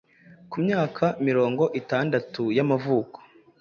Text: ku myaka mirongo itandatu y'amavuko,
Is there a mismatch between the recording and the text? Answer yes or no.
no